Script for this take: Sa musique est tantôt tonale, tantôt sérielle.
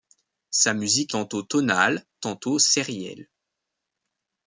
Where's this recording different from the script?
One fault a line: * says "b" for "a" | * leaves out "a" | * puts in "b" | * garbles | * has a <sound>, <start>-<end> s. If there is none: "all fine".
* leaves out "est"